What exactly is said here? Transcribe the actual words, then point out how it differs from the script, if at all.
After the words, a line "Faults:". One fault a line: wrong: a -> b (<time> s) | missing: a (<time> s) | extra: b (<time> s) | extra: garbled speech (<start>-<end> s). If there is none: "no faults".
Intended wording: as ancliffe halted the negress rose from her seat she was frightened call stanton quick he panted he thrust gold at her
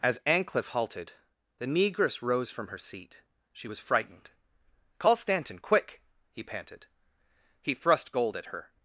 as ancliffe halted the negress rose from her seat she was frightened call stanton quick he panted he thrust gold at her
Faults:
no faults